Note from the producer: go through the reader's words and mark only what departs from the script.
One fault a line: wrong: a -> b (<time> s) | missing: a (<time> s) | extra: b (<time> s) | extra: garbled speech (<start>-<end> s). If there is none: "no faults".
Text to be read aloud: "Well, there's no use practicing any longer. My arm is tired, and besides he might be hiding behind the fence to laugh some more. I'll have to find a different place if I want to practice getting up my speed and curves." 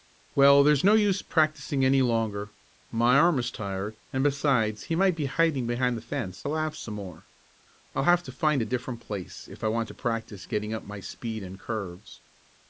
missing: to (6.4 s)